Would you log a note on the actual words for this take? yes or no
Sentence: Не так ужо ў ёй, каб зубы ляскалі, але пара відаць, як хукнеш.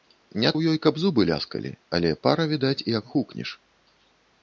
yes